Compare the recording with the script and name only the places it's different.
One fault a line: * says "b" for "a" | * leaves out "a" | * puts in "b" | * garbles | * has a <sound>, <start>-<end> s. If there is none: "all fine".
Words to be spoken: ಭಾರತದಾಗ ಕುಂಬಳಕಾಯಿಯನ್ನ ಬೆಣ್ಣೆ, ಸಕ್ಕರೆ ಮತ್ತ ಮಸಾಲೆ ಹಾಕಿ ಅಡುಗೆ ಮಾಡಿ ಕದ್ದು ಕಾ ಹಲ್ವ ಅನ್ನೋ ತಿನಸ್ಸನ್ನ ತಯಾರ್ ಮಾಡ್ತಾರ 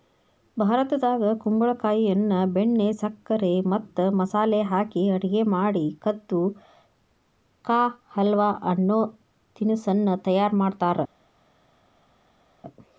all fine